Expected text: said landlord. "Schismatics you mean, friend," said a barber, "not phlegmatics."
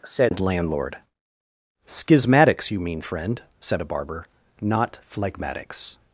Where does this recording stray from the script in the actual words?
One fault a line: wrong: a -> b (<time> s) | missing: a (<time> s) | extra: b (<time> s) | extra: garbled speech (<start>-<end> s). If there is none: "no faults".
no faults